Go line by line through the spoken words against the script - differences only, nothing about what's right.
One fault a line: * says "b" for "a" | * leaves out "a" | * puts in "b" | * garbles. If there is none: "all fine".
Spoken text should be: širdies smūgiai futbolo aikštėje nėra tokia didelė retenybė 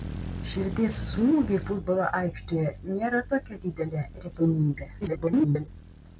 * garbles